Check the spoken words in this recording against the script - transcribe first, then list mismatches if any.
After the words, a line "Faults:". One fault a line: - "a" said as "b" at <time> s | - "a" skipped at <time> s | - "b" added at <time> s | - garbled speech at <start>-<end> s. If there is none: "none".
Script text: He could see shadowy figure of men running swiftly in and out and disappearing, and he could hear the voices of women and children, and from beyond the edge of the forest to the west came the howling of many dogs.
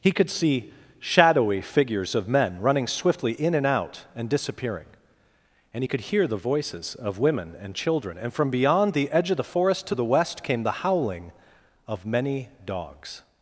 He could see shadowy figures of men running swiftly in and out and disappearing, and he could hear the voices of women and children, and from beyond the edge of the forest to the west came the howling of many dogs.
Faults:
- "figure" said as "figures" at 1.6 s